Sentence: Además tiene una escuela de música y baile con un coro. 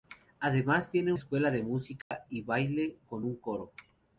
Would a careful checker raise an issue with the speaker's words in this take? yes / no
yes